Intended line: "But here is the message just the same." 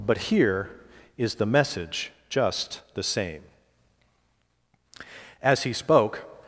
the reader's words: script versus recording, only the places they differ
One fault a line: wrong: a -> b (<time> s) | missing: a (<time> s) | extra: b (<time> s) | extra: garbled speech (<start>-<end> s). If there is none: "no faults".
extra: As he spoke (5.4 s)